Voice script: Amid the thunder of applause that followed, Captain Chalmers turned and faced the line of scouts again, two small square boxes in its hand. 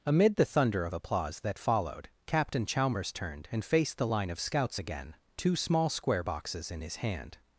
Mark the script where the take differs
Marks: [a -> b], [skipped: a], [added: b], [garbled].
Amid the thunder of applause that followed, Captain Chalmers turned and faced the line of scouts again, two small square boxes in [its -> his] hand.